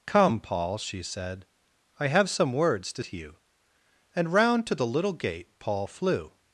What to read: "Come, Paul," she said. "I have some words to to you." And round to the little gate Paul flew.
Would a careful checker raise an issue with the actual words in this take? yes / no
no